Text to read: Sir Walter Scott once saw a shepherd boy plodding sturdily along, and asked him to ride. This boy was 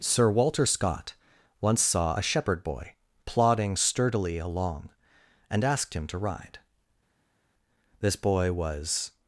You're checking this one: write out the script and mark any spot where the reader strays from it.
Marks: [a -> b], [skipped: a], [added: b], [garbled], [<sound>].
Sir Walter Scott once saw a shepherd boy plodding sturdily along, and asked him to ride. This boy was